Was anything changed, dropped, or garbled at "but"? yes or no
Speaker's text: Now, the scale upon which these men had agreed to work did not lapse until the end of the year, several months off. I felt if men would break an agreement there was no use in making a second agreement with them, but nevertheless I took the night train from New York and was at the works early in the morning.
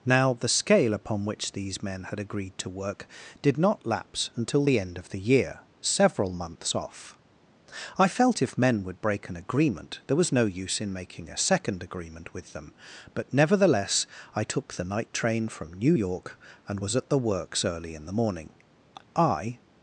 no